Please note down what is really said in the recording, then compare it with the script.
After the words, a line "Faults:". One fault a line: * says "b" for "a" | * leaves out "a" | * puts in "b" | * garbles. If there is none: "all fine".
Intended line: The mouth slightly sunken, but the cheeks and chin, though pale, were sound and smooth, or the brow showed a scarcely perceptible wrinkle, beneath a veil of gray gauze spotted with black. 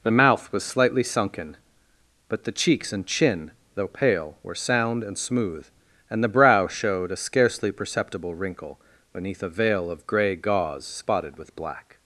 The mouth was slightly sunken, but the cheeks and chin, though pale, were sound and smooth, and the brow showed a scarcely perceptible wrinkle, beneath a veil of gray gauze spotted with black.
Faults:
* puts in "was"
* says "and" for "or"